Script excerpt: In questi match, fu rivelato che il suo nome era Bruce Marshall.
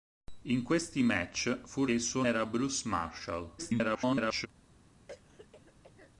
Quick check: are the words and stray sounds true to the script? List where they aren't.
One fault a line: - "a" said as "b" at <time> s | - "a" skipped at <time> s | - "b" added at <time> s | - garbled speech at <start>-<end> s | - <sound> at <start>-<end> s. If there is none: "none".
- "rivelato che" skipped at 1.9 s
- "nome" skipped at 2.2 s
- garbled speech at 3.6-4.5 s
- throat clearing at 5.1-6.1 s